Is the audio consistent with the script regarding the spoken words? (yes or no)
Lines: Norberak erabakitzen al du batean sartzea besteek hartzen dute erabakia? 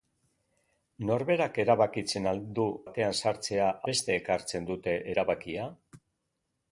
yes